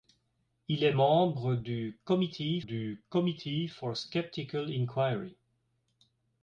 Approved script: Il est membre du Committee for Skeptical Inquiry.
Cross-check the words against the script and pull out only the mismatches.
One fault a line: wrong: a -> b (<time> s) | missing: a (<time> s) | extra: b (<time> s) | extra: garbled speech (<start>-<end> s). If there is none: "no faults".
extra: du Committee (2.6 s)